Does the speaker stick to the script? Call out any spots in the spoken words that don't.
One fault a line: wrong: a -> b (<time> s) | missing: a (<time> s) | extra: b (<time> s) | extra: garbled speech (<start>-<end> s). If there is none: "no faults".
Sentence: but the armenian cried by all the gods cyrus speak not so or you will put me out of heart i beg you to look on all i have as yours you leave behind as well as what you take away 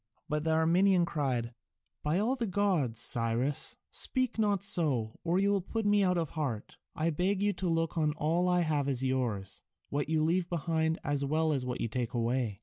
extra: what (9.9 s)